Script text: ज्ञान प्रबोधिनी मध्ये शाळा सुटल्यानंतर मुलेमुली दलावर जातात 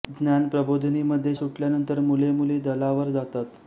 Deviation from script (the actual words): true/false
true